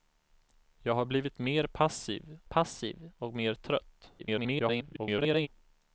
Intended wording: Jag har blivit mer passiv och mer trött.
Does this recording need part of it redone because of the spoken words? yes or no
yes